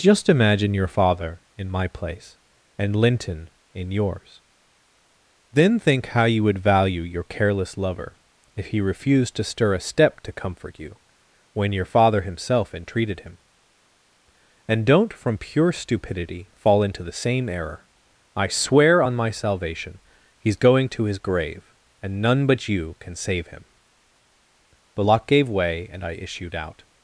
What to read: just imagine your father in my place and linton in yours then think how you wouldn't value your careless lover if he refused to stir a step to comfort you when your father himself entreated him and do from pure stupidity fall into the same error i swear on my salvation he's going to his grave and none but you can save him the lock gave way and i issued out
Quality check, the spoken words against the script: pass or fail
fail